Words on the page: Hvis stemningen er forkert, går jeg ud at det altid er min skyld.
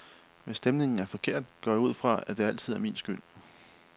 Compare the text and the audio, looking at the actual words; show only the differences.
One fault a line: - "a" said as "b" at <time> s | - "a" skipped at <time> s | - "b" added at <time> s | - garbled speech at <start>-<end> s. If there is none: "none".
- "fra" added at 1.9 s